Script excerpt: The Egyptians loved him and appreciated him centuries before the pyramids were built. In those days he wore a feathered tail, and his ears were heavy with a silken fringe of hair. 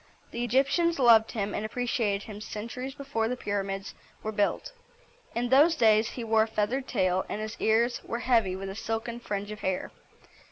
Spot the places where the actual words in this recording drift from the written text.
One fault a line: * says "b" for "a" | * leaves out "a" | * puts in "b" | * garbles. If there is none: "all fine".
all fine